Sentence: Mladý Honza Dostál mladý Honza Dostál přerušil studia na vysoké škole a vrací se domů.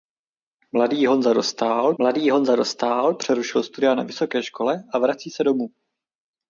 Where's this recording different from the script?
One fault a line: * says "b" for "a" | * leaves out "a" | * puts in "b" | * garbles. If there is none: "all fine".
all fine